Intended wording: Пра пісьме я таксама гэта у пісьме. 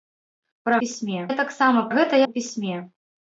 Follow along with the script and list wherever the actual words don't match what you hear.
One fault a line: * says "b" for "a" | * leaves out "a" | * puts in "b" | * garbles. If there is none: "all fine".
all fine